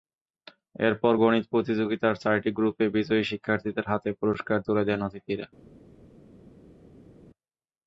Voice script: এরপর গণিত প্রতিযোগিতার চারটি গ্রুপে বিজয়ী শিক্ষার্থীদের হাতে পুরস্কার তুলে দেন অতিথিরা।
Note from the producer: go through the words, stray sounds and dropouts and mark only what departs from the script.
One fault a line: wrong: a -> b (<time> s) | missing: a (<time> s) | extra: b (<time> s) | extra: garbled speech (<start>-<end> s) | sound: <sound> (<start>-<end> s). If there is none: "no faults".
no faults